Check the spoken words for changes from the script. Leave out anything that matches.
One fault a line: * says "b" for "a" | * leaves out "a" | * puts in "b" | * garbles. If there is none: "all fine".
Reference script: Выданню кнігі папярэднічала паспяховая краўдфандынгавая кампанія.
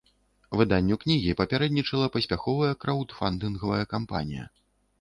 all fine